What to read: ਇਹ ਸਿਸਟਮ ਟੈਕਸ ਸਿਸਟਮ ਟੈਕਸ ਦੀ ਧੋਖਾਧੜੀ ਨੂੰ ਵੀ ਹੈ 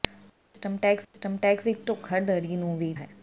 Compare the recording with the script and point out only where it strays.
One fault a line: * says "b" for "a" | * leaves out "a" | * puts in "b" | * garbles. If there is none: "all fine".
all fine